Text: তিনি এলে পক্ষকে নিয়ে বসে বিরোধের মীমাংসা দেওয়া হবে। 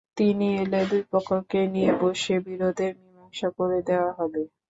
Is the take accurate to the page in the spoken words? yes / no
no